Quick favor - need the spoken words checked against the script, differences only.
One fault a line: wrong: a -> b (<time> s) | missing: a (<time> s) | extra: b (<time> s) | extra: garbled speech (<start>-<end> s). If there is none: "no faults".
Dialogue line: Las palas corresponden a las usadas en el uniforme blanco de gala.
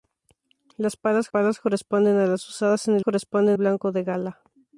extra: palas (1.3 s)
wrong: uniforme -> corresponden (3.0 s)